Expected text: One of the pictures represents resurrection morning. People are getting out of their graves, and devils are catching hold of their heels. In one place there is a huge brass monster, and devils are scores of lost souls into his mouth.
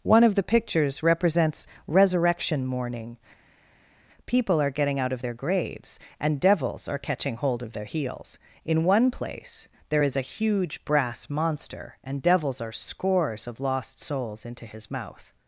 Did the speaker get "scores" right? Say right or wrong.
right